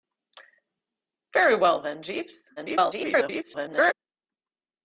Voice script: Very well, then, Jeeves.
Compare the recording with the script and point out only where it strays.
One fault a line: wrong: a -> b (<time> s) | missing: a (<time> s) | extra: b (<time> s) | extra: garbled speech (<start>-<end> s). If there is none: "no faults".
extra: garbled speech (2.6-3.9 s)